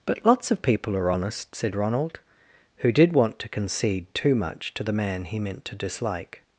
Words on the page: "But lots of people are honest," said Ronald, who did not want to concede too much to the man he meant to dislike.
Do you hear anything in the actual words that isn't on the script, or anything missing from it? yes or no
yes